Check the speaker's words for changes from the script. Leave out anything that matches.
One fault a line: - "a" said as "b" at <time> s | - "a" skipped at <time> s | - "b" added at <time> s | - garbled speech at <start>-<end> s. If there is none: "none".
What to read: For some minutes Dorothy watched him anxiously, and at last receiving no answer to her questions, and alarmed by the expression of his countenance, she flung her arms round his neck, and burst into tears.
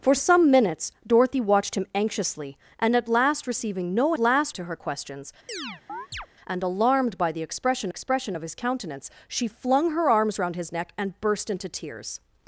- "answer" said as "last" at 4.2 s
- "expression" added at 7.9 s